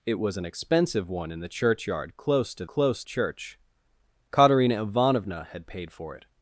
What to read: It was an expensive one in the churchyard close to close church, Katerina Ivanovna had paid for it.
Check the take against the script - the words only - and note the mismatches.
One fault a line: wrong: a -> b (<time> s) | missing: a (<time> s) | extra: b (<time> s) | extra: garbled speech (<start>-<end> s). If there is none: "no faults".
no faults